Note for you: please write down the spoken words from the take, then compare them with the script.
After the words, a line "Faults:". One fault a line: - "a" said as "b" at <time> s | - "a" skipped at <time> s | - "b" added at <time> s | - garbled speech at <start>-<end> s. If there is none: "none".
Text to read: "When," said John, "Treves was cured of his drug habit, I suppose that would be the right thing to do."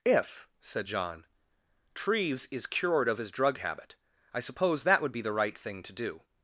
"If," said John, "Treves is cured of his drug habit, I suppose that would be the right thing to do."
Faults:
- "When" said as "If" at 0.1 s
- "was" said as "is" at 2.5 s